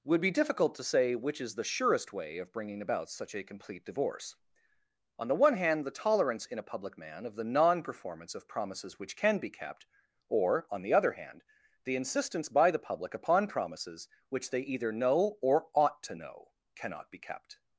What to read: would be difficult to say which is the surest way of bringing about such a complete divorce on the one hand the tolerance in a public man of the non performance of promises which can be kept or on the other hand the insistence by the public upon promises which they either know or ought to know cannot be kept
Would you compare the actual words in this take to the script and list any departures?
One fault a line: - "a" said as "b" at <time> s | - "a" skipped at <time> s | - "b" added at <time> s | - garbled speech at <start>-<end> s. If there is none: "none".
none